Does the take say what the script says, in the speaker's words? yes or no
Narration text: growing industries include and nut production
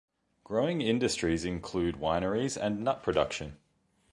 no